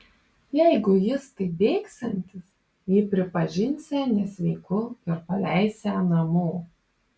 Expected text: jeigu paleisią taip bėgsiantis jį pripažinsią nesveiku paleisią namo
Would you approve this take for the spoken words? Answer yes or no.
no